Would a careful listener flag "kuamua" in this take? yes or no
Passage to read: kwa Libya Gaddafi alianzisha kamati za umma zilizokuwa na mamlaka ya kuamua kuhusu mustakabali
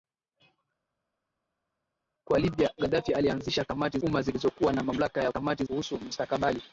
yes